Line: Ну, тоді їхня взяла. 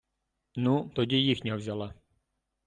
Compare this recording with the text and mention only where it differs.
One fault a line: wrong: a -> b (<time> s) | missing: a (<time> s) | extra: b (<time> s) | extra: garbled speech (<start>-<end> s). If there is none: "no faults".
no faults